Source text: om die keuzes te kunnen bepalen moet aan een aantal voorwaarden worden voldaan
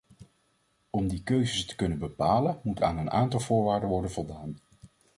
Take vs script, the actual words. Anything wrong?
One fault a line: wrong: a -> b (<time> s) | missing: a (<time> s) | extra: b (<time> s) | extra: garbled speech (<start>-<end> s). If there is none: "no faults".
no faults